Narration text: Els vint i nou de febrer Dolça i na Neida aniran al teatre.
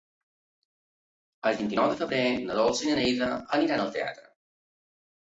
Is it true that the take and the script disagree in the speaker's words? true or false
true